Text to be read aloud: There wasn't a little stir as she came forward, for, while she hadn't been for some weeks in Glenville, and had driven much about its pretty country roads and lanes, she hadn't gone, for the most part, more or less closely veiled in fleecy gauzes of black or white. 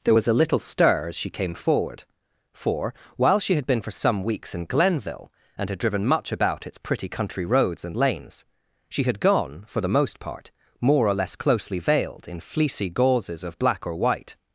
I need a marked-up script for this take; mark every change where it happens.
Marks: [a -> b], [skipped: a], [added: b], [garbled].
There [wasn't -> was] a little stir as she came forward, for, while she [hadn't -> had] been for some weeks in Glenville, and had driven much about its pretty country roads and lanes, she [hadn't -> had] gone, for the most part, more or less closely veiled in fleecy gauzes of black or white.